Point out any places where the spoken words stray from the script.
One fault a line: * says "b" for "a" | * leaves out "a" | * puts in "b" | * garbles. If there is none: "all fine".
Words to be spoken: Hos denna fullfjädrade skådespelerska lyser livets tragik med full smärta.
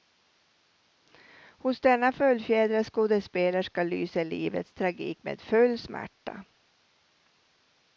all fine